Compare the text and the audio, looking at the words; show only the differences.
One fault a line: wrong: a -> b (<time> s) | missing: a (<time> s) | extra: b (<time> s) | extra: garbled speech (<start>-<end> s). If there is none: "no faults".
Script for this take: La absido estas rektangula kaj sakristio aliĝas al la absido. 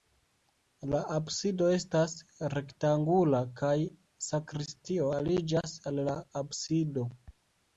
no faults